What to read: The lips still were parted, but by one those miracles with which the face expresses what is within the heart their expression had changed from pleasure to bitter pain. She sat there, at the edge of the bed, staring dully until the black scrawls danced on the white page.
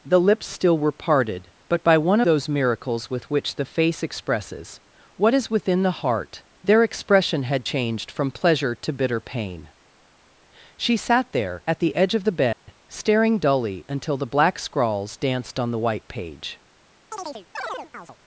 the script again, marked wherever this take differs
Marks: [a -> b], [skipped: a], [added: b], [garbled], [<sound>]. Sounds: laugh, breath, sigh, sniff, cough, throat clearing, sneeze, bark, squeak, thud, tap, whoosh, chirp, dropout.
The lips still were parted, but by one those miracles with which the face expresses what is within the heart their expression had changed from pleasure to bitter pain. She sat there, at the edge of the bed, [dropout] staring dully until the black scrawls danced on the white page. [chirp]